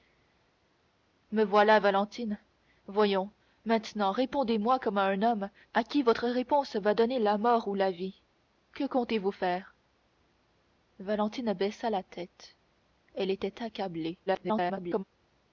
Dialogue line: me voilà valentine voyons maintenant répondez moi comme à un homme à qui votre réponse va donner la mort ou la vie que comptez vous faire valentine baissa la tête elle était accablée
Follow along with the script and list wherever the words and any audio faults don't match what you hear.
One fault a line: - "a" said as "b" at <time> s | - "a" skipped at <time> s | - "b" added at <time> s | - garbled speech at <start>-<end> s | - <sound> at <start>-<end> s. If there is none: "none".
- garbled speech at 14.3-15.0 s